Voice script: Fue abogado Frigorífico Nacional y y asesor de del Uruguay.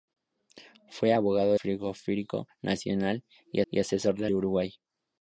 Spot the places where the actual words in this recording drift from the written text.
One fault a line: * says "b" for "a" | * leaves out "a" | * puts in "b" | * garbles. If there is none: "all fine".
all fine